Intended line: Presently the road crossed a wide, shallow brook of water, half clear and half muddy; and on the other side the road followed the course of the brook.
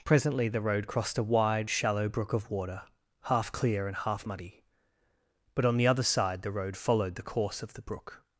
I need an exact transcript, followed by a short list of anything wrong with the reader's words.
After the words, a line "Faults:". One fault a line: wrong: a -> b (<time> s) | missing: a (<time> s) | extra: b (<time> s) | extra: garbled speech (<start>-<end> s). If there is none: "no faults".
Presently the road crossed a wide, shallow brook of water, half clear and half muddy; but on the other side the road followed the course of the brook.
Faults:
wrong: and -> but (5.5 s)